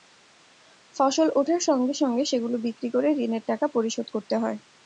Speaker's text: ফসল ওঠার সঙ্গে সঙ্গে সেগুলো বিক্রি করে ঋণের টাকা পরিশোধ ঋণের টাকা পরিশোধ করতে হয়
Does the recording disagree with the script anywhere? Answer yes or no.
yes